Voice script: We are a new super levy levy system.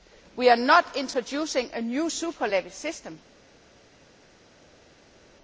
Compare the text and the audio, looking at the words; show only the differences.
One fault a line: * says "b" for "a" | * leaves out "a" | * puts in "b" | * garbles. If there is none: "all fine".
* puts in "not introducing"
* leaves out "levy"